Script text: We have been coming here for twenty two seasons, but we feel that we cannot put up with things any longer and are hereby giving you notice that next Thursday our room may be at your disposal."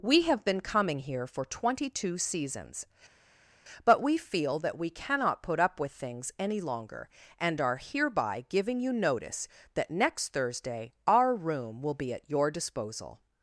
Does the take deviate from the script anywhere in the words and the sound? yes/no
yes